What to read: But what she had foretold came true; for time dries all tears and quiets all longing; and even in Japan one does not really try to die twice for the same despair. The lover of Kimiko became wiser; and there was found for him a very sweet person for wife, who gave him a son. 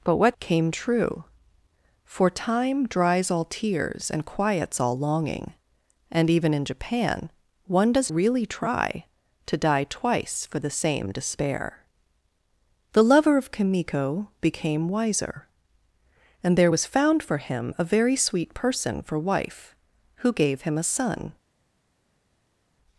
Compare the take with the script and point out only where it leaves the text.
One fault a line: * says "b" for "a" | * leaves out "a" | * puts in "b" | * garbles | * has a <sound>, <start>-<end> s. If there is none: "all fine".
* leaves out "she had foretold"
* leaves out "not"